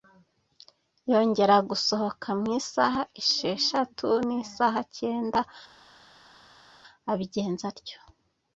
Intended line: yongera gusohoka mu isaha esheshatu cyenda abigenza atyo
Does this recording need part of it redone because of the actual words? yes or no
yes